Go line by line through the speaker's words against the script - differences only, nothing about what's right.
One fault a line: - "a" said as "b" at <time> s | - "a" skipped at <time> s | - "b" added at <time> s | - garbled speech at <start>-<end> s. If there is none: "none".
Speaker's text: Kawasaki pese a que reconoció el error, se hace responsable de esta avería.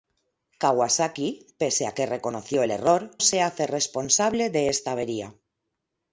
none